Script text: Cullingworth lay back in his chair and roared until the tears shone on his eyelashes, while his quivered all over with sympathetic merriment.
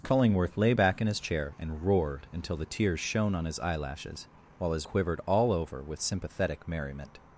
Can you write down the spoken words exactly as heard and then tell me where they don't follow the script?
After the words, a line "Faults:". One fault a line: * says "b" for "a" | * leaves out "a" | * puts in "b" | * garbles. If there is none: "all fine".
Cullingworth lay back in his chair and roared until the tears shone on his eyelashes, while his quivered all over with sympathetic merriment.
Faults:
all fine